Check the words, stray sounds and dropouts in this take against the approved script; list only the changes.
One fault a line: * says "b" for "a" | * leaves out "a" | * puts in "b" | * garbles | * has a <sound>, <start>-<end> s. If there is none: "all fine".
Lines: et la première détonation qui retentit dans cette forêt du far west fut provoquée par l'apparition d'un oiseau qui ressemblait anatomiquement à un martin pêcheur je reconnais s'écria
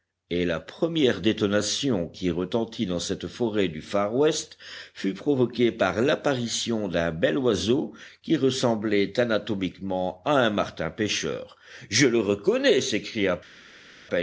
* puts in "bel"
* puts in "le"